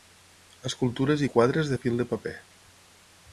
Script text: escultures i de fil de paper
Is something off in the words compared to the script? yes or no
yes